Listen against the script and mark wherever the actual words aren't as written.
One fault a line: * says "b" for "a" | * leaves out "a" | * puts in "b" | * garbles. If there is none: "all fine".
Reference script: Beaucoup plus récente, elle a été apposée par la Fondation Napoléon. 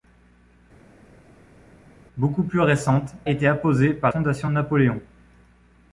* leaves out "elle a"
* leaves out "la"